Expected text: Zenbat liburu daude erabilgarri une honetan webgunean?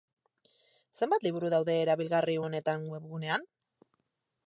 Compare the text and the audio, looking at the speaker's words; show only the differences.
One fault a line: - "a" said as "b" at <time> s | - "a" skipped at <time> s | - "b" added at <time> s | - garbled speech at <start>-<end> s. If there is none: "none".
- "une" skipped at 2.4 s